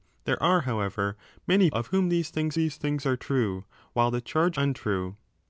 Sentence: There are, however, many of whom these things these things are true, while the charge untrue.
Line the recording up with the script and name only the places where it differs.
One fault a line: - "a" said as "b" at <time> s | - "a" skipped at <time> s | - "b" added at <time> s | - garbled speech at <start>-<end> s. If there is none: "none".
none